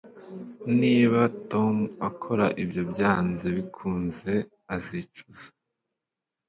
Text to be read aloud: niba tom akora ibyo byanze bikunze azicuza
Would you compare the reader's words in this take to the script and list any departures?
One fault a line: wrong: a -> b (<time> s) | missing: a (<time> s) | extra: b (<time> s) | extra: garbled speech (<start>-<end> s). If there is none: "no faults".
no faults